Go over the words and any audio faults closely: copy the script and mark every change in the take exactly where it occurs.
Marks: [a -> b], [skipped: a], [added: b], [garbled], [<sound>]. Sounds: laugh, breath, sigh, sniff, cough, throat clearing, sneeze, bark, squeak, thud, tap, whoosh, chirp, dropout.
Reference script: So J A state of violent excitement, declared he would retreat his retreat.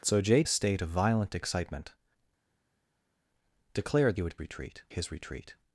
So J A state of violent excitement, declared he would retreat his retreat.